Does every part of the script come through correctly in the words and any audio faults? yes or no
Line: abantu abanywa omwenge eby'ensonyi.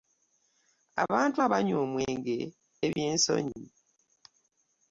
no